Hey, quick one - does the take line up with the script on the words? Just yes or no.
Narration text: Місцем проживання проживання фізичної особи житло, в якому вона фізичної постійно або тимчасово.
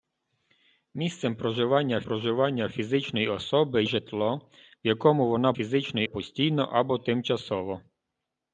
yes